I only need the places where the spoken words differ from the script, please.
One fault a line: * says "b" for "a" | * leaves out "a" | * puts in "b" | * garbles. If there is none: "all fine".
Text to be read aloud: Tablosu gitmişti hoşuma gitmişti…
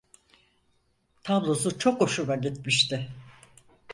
* says "çok" for "gitmişti"